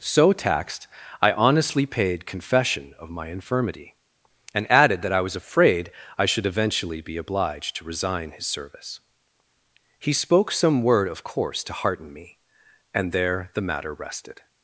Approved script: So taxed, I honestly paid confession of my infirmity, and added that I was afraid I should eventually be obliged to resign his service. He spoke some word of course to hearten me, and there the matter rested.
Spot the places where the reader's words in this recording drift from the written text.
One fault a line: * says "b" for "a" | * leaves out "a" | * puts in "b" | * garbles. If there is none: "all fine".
all fine